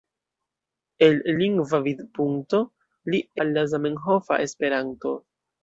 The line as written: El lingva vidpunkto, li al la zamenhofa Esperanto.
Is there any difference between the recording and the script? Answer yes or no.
no